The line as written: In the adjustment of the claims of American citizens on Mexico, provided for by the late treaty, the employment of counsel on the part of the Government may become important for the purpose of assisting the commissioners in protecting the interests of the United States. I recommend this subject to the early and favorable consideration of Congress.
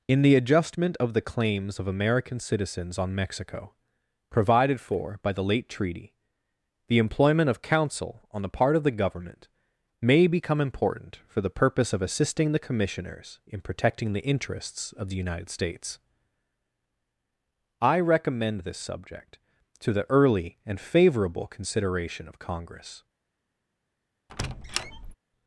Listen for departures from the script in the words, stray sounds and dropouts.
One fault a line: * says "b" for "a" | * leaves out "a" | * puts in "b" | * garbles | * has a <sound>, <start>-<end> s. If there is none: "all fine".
* has a squeak, 24.3-25.1 s